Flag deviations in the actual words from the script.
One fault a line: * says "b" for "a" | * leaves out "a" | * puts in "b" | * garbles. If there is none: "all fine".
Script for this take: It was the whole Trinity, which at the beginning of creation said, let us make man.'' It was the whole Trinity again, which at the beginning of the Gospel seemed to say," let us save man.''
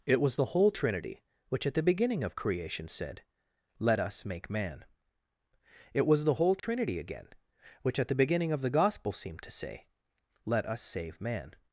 all fine